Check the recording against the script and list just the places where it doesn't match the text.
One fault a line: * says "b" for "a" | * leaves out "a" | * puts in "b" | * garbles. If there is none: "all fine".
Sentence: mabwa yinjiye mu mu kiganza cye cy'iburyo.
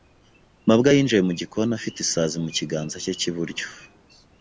* puts in "gikoni afite isazi"